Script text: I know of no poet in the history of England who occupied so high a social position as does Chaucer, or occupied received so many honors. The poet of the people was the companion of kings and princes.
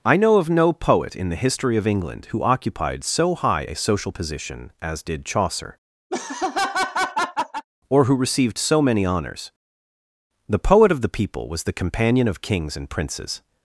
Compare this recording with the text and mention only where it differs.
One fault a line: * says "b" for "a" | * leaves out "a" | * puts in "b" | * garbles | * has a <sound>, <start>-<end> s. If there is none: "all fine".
* says "did" for "does"
* has a laugh, 6.1-7.6 s
* says "who" for "occupied"